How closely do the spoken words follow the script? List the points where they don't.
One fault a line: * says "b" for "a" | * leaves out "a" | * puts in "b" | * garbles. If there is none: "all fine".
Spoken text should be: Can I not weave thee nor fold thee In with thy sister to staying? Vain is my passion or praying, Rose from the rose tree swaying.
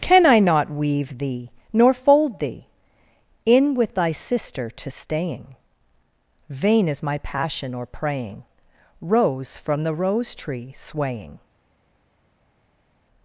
all fine